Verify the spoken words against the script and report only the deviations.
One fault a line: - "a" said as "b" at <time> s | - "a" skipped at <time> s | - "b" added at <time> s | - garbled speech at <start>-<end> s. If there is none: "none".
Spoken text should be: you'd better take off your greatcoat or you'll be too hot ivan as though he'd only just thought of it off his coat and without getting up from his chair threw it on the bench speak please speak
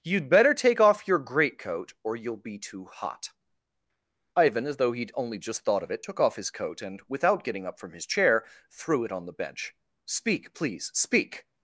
- "took" added at 6.0 s